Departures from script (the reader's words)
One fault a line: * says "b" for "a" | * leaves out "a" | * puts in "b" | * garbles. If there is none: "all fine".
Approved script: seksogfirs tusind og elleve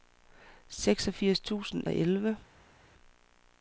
all fine